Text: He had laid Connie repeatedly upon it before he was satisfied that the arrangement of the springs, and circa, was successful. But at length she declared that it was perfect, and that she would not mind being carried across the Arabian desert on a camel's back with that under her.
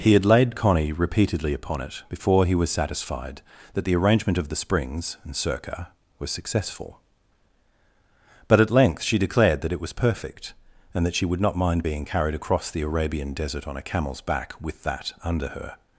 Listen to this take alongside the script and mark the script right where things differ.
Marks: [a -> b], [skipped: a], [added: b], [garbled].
He had laid Connie repeatedly upon it before he was satisfied that the arrangement of the springs, and circa, was successful. But at length she declared that it was perfect, and that she would not mind being carried across the Arabian desert on a camel's back with that under her.